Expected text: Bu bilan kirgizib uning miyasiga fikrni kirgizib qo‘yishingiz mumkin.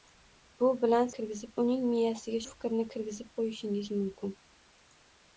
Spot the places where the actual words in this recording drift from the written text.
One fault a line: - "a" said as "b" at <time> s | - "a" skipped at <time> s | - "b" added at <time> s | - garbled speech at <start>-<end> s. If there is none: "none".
none